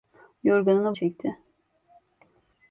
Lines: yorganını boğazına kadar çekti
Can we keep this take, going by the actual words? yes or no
no